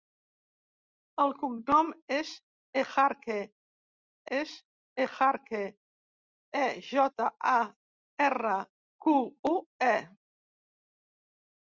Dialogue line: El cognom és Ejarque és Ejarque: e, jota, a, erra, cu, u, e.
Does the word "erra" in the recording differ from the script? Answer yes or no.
no